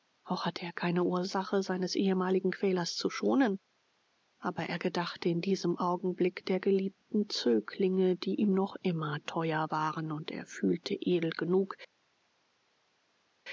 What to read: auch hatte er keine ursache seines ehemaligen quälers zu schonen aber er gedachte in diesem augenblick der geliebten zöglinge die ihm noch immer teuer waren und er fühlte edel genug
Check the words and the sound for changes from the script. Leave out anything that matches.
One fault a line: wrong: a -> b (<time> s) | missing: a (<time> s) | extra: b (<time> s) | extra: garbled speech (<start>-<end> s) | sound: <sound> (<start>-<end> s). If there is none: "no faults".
no faults